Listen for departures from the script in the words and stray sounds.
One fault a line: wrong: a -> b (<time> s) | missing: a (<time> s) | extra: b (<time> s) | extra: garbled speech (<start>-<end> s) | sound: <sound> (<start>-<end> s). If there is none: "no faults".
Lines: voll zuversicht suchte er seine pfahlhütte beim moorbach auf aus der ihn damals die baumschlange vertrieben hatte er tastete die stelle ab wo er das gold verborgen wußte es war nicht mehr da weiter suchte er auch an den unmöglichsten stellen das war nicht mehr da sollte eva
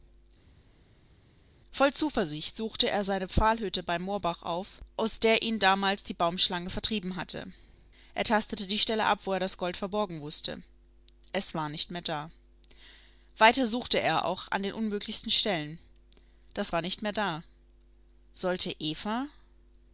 no faults